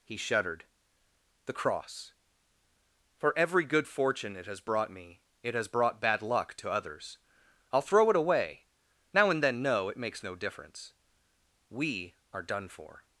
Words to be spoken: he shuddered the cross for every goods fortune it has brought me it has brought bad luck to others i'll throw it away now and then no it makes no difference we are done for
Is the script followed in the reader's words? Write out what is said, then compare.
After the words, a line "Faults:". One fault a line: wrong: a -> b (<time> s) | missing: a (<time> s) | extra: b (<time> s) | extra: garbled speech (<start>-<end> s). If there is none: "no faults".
he shuddered the cross for every good fortune it has brought me it has brought bad luck to others i'll throw it away now and then no it makes no difference we are done for
Faults:
wrong: goods -> good (3.6 s)